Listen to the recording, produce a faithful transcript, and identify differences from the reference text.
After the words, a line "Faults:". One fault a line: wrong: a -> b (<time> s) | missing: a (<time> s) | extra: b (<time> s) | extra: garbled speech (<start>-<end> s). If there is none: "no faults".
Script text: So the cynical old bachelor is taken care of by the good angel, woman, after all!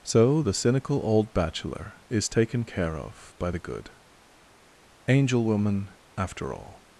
So the cynical old bachelor is taken care of by the good angel, woman, after all!
Faults:
no faults